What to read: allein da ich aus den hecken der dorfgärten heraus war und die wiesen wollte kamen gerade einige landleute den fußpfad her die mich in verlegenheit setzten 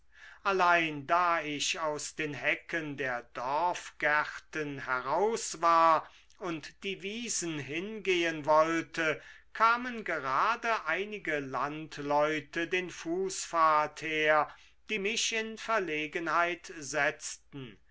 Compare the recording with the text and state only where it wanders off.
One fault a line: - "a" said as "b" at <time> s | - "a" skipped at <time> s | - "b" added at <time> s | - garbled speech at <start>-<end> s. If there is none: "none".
- "hingehen" added at 7.6 s